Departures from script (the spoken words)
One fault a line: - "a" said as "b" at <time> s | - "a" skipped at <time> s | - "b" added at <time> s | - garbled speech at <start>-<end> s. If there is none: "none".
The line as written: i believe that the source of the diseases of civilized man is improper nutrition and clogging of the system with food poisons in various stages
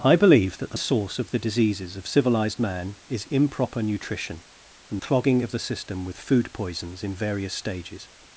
none